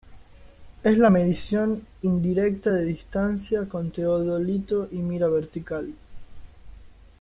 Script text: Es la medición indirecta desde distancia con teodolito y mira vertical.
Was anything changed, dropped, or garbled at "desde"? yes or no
yes